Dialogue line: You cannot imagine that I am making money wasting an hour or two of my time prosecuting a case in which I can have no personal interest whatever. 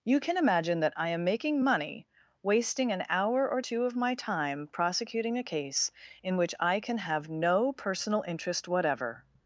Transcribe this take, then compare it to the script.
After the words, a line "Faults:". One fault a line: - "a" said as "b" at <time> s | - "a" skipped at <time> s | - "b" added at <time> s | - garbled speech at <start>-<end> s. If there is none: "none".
You can imagine that I am making money wasting an hour or two of my time prosecuting a case in which I can have no personal interest whatever.
Faults:
- "cannot" said as "can" at 0.2 s